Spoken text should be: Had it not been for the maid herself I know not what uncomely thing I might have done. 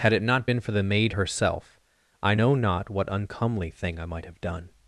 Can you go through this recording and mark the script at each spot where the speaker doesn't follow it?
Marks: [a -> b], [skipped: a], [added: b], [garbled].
Had it not been for the maid herself I know not what uncomely thing I might have done.